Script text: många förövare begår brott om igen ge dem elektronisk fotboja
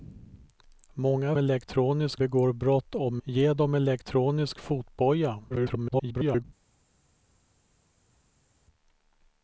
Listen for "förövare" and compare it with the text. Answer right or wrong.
wrong